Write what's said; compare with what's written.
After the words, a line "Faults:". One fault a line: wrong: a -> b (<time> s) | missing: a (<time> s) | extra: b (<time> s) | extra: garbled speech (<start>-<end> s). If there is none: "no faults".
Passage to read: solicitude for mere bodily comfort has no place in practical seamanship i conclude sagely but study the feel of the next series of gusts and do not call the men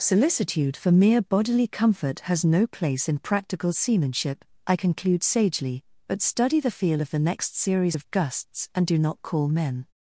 solicitude for mere bodily comfort has no place in practical seamanship i conclude sagely but study the feel of the next series of gusts and do not call men
Faults:
missing: the (9.5 s)